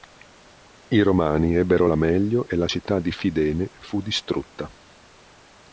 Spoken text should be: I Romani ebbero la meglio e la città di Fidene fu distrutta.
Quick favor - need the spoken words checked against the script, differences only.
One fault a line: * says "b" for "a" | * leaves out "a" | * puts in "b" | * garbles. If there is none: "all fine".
all fine